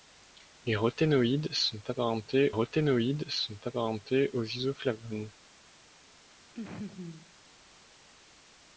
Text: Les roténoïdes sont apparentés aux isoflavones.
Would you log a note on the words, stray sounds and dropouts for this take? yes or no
yes